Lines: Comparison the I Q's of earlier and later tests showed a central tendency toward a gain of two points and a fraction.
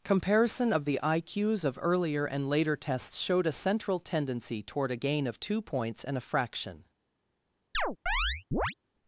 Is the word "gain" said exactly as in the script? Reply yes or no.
yes